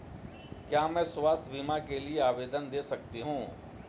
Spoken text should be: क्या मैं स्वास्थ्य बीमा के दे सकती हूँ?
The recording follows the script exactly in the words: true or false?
false